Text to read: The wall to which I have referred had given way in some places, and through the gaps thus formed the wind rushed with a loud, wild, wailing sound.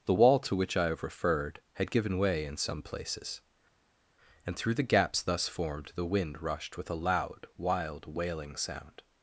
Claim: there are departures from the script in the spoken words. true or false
false